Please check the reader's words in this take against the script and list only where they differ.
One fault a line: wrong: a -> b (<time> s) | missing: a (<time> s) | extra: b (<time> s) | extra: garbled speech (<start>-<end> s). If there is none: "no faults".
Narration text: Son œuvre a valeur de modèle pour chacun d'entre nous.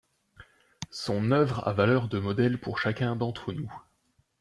no faults